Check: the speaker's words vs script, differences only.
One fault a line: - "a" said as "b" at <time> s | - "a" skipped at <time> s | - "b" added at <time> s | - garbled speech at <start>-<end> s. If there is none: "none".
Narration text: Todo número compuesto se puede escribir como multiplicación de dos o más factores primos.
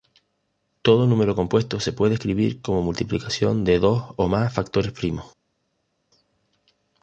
none